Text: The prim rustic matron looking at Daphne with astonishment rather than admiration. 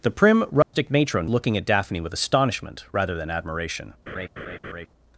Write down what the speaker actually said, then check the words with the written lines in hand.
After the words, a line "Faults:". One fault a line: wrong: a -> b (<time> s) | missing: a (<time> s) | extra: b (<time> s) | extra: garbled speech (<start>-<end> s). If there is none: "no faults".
The prim rustic matron looking at Daphne with astonishment rather than admiration.
Faults:
no faults